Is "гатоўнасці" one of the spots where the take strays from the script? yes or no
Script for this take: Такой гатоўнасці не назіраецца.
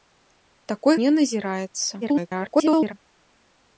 yes